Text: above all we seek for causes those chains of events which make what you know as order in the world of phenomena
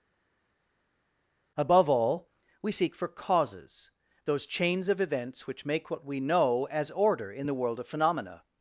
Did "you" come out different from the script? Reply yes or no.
yes